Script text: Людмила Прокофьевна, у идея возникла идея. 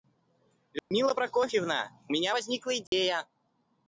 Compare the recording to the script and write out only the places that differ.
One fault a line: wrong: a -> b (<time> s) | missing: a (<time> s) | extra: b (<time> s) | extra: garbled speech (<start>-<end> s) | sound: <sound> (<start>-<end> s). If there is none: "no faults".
sound: dropout (0.8-0.9 s)
wrong: идея -> меня (2.1 s)
sound: dropout (2.9-2.9 s)